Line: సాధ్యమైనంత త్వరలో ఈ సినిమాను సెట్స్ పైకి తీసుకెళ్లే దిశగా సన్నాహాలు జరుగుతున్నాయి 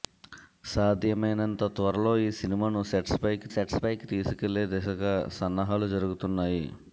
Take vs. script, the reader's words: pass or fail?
fail